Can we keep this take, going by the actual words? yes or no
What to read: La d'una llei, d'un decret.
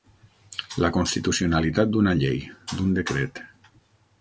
no